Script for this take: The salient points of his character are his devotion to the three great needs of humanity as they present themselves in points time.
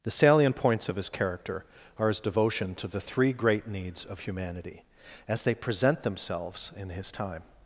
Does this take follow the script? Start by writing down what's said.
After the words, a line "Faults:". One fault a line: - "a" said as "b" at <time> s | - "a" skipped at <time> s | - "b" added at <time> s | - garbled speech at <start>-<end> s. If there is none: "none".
The salient points of his character are his devotion to the three great needs of humanity as they present themselves in his time.
Faults:
- "points" said as "his" at 6.9 s